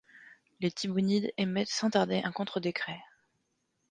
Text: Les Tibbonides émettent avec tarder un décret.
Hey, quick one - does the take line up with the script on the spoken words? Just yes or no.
no